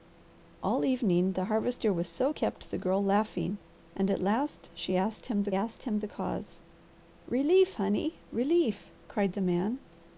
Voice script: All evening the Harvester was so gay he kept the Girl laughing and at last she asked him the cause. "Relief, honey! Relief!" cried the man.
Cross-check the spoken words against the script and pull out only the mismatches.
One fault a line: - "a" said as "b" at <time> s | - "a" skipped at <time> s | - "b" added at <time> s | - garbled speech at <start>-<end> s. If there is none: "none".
- "gay he" skipped at 2.3 s
- "asked him the" added at 5.5 s